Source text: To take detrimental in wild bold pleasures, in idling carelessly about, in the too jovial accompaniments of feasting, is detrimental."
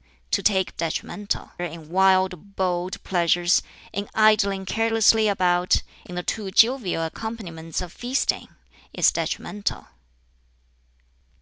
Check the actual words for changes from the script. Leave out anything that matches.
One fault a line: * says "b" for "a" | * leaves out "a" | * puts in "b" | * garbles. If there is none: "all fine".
all fine